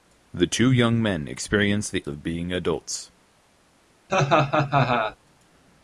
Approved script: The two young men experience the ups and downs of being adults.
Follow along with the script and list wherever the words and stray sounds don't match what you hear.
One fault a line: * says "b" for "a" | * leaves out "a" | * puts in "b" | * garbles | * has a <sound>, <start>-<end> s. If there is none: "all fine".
* leaves out "ups and downs"
* has a laugh, 4.1-5.2 s